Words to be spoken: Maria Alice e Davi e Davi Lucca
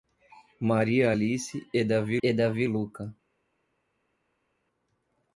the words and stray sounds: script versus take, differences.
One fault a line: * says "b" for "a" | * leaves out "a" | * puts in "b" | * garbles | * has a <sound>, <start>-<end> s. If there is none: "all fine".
all fine